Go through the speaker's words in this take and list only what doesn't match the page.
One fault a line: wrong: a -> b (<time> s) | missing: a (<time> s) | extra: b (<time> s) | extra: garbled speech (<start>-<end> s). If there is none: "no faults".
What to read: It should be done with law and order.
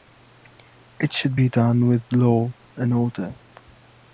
no faults